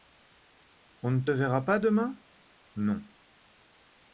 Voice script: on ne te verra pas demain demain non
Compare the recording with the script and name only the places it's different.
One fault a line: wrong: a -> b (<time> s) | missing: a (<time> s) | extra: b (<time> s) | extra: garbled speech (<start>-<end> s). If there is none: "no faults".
missing: demain (2.2 s)